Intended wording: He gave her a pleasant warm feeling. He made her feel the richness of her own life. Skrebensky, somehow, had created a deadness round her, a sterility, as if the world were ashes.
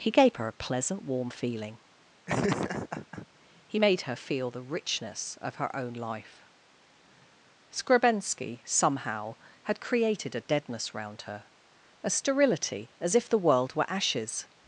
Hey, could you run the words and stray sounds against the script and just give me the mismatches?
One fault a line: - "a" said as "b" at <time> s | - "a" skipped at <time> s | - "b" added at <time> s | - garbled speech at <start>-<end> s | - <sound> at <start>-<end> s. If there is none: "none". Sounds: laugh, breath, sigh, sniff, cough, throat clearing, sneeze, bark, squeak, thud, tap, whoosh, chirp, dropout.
- laugh at 2.3-3.3 s